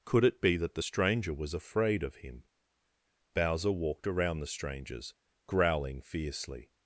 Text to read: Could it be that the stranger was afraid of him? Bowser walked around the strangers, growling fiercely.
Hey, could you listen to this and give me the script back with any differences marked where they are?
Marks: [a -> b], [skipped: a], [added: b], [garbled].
Could it be that the stranger was afraid of him? Bowser walked around the strangers, growling fiercely.